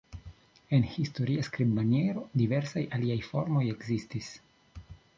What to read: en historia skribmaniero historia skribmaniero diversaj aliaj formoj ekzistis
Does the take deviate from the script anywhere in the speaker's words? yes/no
yes